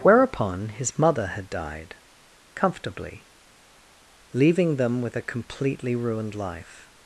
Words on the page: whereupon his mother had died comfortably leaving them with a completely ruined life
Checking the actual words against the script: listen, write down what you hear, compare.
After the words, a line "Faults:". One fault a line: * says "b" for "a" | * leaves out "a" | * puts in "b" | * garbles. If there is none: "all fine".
whereupon his mother had died comfortably leaving them with a completely ruined life
Faults:
all fine